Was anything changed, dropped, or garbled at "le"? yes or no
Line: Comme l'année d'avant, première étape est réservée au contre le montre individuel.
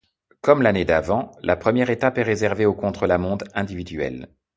yes